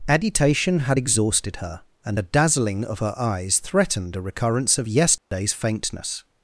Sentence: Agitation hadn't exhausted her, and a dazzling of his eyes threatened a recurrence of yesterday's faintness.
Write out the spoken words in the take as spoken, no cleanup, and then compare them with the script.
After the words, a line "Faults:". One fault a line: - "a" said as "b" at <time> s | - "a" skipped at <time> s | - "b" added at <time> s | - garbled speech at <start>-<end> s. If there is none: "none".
Agitation had exhausted her, and a dazzling of her eyes threatened a recurrence of yesterday's faintness.
Faults:
- "hadn't" said as "had" at 0.8 s
- "his" said as "her" at 3.0 s